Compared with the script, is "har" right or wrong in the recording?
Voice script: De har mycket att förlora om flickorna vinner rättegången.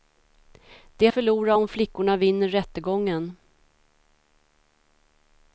wrong